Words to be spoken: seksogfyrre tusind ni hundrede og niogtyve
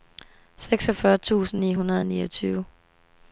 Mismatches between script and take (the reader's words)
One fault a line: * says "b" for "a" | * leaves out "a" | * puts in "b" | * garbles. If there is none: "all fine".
all fine